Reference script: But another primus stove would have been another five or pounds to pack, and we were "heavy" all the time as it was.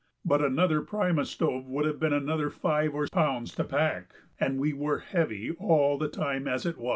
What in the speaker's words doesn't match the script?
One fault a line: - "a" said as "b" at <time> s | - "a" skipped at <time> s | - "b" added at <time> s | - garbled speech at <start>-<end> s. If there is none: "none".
none